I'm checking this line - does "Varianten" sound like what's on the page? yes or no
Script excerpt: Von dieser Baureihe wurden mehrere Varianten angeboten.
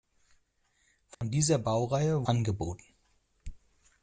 no